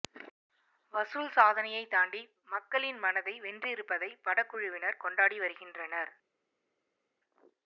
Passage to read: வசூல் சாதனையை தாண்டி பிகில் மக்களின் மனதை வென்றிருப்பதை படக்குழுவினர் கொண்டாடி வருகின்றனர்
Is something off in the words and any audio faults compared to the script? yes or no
yes